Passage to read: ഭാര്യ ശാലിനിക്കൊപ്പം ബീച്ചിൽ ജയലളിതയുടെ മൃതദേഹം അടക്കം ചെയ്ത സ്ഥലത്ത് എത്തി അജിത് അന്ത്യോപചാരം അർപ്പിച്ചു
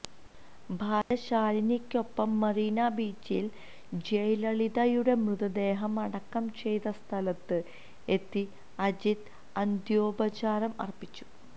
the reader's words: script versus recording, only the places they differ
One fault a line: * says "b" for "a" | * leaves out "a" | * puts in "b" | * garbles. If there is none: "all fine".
* puts in "മറീന"